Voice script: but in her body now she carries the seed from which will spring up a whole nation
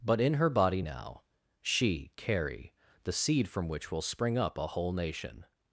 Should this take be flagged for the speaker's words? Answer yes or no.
yes